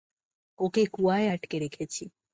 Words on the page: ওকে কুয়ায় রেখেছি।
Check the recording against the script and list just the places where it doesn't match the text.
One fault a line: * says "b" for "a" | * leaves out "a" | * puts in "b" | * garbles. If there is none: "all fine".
* puts in "আটকে"